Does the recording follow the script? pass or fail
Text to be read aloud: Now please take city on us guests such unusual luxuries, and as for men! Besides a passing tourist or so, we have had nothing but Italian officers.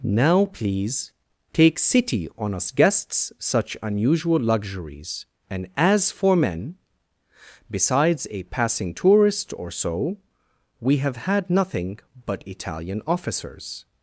pass